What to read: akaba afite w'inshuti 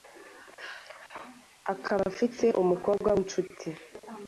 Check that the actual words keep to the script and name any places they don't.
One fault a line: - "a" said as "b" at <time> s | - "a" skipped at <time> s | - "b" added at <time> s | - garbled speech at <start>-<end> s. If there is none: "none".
- "umukobwa" added at 2.6 s